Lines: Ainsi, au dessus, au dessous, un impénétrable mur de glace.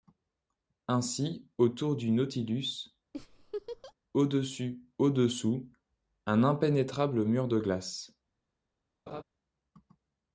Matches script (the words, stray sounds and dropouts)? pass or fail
fail